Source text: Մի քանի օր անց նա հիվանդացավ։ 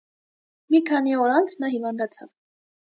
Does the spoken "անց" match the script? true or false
true